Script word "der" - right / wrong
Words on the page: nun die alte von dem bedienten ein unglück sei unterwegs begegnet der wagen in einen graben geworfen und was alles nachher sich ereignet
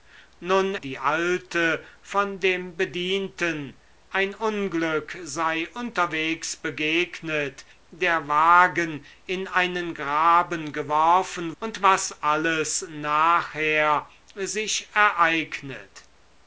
right